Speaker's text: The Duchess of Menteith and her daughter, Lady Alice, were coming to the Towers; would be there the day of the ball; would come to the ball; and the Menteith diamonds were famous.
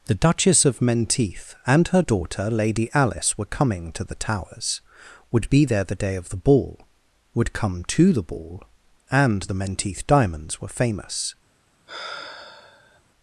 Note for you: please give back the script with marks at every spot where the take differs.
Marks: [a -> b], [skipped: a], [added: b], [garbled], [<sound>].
The Duchess of Menteith and her daughter, Lady Alice, were coming to the Towers; would be there the day of the ball; would come to the ball; and the Menteith diamonds were famous. [sigh]